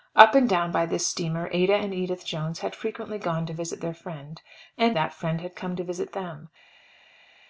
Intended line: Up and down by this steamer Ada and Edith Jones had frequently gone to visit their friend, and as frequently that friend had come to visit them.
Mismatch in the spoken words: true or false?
true